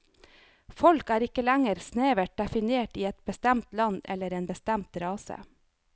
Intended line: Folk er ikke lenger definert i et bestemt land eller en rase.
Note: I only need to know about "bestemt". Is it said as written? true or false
true